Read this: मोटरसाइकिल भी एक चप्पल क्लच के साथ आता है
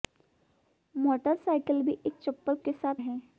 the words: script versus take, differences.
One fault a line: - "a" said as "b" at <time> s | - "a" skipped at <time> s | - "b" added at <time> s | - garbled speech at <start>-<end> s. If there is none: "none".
- "क्लच" skipped at 2.6 s
- "आता" skipped at 3.0 s